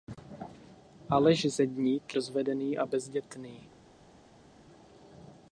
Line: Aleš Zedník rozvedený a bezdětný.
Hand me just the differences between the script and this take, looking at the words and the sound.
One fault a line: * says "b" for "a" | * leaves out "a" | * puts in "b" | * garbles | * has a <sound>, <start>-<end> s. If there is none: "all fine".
all fine